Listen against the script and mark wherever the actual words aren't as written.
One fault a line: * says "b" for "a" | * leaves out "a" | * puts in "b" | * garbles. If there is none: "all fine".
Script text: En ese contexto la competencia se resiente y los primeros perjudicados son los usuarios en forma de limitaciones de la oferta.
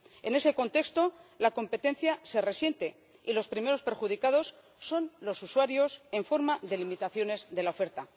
all fine